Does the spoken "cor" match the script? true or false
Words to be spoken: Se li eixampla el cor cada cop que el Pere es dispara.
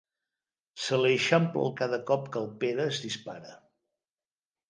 false